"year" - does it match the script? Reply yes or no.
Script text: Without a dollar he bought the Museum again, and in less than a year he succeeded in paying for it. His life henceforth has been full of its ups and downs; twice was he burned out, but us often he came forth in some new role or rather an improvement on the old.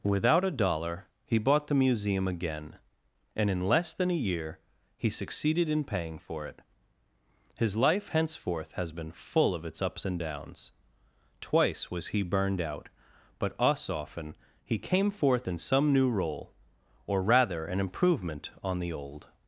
yes